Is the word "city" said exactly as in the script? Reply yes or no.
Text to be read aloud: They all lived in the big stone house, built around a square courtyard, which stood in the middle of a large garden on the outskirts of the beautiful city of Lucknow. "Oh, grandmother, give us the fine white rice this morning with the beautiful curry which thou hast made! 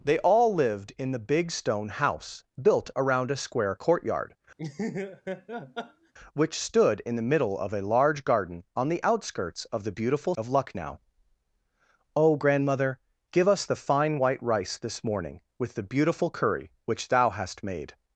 no